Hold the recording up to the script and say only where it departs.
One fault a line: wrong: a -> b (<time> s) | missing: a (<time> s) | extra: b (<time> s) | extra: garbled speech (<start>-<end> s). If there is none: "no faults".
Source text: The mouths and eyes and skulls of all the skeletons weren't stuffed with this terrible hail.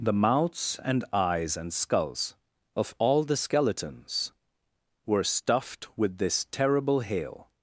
wrong: weren't -> were (5.0 s)